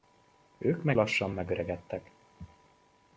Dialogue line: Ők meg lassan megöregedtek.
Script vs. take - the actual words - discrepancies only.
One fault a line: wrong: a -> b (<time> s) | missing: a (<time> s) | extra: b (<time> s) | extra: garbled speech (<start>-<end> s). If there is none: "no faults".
no faults